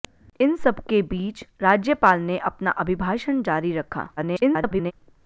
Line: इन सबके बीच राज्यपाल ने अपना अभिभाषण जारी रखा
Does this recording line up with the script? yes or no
no